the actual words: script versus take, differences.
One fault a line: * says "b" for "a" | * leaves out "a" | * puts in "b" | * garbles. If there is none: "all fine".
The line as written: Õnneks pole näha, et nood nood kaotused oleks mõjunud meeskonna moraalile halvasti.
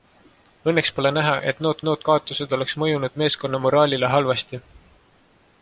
all fine